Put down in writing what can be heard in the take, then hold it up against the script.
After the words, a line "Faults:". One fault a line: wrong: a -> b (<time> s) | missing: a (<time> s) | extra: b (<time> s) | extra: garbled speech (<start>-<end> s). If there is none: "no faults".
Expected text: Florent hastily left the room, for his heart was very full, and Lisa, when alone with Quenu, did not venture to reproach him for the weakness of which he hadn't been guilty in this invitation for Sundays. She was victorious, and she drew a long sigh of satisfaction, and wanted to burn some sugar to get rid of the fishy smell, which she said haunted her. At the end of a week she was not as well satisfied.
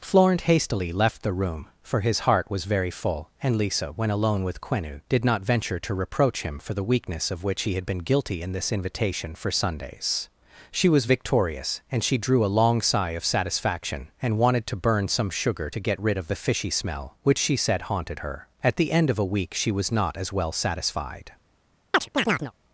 Florent hastily left the room, for his heart was very full, and Lisa, when alone with Quenu, did not venture to reproach him for the weakness of which he had been guilty in this invitation for Sundays. She was victorious, and she drew a long sigh of satisfaction, and wanted to burn some sugar to get rid of the fishy smell, which she said haunted her. At the end of a week she was not as well satisfied.
Faults:
wrong: hadn't -> had (7.8 s)